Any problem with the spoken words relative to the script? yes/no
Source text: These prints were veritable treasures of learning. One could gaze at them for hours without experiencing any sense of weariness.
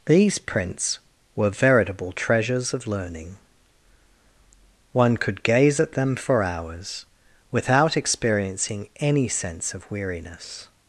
no